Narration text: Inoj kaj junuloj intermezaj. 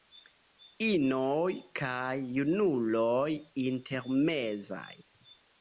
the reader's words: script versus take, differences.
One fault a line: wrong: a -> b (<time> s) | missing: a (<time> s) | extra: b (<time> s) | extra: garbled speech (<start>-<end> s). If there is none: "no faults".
no faults